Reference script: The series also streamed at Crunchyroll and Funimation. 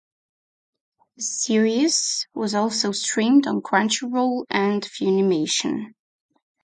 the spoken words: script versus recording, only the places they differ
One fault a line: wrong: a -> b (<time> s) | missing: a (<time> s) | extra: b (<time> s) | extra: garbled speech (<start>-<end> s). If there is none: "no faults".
extra: was (2.3 s)
wrong: at -> on (3.5 s)